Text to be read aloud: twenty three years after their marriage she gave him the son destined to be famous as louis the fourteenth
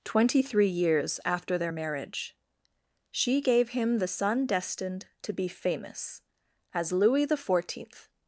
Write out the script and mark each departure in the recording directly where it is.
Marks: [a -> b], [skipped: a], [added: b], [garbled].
twenty three years after their marriage she gave him the son destined to be famous as louis the fourteenth